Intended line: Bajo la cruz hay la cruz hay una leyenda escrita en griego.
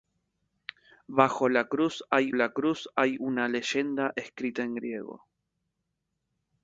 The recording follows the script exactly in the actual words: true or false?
true